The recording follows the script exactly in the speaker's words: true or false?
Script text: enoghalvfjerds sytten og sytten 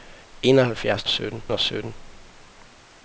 true